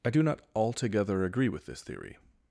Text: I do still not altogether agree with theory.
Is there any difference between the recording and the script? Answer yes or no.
yes